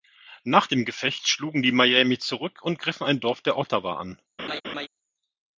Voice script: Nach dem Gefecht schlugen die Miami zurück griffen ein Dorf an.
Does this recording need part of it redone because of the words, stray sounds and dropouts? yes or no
yes